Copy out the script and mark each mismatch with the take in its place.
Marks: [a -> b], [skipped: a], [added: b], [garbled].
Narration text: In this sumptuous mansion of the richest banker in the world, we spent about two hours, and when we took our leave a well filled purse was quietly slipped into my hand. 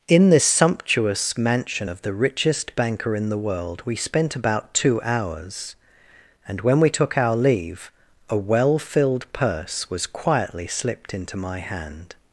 In this sumptuous mansion of the richest banker in the world, we spent about two hours, and when we took our leave a well filled purse was quietly slipped into my hand.